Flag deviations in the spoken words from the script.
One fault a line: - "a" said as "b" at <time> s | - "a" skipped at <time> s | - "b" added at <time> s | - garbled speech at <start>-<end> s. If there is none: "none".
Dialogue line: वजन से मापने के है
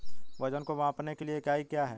- "से" said as "को" at 0.6 s
- "लिए इकाई क्या" added at 1.2 s